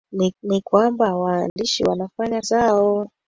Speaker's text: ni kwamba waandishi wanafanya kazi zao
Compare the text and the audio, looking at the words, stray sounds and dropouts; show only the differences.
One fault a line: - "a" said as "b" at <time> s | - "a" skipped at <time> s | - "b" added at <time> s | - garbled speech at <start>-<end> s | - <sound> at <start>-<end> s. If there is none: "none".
- "ni" added at 0.4 s
- dropout at 1.5-1.6 s
- "kazi" skipped at 2.4 s